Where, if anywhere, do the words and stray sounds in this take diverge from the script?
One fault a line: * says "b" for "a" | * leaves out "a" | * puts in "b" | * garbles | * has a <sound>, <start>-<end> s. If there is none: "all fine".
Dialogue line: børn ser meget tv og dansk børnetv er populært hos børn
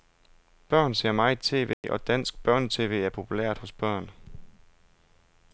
* has a dropout, 1.7-1.8 s